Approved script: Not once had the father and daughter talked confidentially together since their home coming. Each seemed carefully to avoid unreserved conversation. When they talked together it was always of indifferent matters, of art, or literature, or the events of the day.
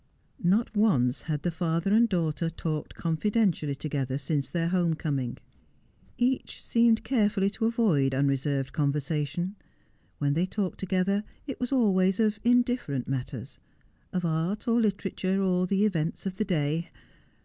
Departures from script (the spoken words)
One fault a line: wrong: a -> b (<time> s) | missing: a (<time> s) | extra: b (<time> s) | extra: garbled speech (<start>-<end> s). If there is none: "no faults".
no faults